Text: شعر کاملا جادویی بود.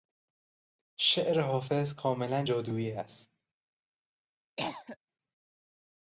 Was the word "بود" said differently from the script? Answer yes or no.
yes